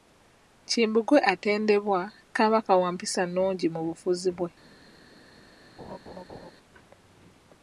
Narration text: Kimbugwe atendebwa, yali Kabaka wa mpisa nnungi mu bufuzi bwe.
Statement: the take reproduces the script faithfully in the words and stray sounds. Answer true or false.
false